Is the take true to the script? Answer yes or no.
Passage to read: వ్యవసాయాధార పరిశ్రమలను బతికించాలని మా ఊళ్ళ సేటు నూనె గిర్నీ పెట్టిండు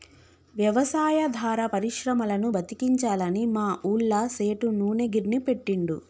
yes